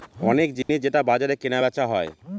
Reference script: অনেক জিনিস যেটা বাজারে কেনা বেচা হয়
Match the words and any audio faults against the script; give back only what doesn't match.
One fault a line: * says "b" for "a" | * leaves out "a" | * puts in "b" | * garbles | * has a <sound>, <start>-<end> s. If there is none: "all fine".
* has a dropout, 0.6-0.7 s